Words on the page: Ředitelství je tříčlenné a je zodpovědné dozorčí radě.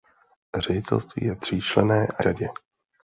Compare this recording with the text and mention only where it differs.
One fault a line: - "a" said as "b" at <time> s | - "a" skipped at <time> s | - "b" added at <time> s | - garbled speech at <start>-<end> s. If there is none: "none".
- "je zodpovědné dozorčí" skipped at 2.2 s